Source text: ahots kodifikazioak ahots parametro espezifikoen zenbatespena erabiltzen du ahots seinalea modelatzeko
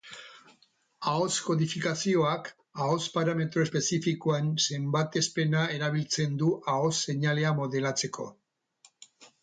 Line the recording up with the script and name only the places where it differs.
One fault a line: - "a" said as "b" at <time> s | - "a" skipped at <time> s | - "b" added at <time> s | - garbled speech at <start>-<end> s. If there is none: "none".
none